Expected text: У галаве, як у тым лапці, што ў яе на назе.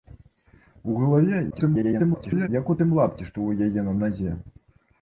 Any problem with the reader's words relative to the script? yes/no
yes